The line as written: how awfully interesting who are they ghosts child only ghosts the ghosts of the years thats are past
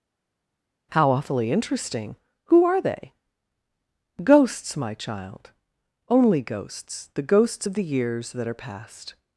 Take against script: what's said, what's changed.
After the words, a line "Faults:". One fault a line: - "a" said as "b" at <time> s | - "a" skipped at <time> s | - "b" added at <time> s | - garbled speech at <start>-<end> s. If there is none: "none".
how awfully interesting who are they ghosts my child only ghosts the ghosts of the years that are past
Faults:
- "my" added at 4.8 s
- "thats" said as "that" at 8.3 s